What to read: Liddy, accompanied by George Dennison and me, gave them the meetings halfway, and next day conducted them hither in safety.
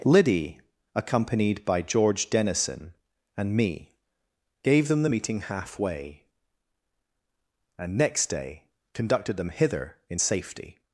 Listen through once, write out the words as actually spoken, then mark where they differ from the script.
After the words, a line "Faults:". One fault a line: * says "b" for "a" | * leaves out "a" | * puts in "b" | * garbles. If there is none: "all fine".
Liddy, accompanied by George Dennison and me, gave them the meeting halfway, and next day conducted them hither in safety.
Faults:
* says "meeting" for "meetings"